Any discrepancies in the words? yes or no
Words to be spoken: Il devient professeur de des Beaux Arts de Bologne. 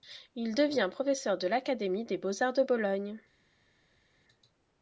yes